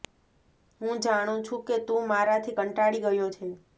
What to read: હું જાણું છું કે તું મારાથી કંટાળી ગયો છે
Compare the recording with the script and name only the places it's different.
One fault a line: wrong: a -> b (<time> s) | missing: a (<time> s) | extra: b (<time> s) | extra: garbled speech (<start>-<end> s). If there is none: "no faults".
no faults